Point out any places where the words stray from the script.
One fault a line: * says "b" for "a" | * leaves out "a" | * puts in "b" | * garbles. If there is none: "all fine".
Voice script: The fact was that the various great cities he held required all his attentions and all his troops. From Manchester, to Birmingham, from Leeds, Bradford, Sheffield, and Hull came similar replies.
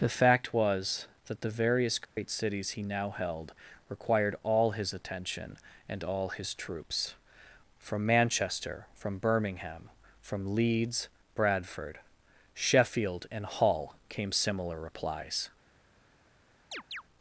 * puts in "now"
* says "attention" for "attentions"
* says "from" for "to"